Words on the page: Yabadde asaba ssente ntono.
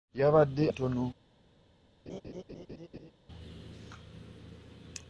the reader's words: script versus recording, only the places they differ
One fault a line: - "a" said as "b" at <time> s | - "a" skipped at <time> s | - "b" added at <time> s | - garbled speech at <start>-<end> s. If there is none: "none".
- "asaba ssente" skipped at 0.7 s